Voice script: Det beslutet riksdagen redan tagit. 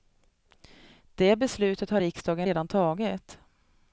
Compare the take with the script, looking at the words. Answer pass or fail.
fail